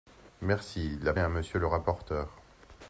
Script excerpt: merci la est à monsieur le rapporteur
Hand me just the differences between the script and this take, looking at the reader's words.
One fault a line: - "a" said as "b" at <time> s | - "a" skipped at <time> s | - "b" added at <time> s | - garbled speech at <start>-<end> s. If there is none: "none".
none